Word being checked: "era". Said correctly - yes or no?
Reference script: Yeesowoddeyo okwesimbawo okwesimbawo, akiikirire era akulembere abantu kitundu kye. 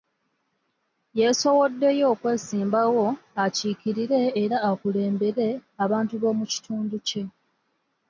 yes